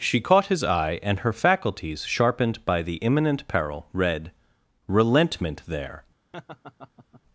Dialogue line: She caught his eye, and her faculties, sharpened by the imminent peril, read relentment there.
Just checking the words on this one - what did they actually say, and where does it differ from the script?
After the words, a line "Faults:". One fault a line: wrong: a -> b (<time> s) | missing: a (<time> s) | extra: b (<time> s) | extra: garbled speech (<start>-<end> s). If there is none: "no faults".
She caught his eye, and her faculties, sharpened by the imminent peril, read relentment there.
Faults:
no faults